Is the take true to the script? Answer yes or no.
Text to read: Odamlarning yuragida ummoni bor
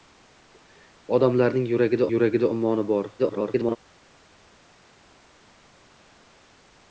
no